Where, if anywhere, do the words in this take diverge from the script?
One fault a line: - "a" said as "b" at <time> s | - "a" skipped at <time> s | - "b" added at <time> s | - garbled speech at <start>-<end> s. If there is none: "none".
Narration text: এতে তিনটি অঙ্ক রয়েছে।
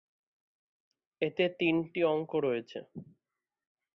none